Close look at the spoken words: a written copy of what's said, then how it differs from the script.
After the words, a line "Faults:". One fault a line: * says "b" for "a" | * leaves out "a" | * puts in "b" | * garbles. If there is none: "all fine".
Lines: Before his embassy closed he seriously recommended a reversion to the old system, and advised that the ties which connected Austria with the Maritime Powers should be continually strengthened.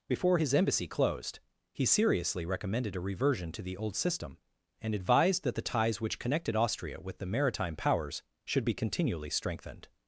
Before his embassy closed he seriously recommended a reversion to the old system, and advised that the ties which connected Austria with the Maritime Powers should be continually strengthened.
Faults:
all fine